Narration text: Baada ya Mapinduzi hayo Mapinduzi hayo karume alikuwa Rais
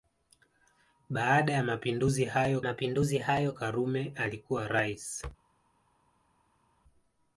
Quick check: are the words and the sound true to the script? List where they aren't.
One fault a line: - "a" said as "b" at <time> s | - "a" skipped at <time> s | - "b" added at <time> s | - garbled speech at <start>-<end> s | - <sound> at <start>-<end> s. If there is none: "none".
none